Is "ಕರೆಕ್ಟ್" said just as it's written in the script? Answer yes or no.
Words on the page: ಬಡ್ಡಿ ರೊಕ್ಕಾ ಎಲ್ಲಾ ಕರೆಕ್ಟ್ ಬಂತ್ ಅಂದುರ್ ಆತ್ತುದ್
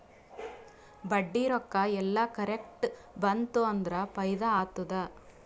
yes